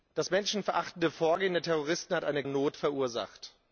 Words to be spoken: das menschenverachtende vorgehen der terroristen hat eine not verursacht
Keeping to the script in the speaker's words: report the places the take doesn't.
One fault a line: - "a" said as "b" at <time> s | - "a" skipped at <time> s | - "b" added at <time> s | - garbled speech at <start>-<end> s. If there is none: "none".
none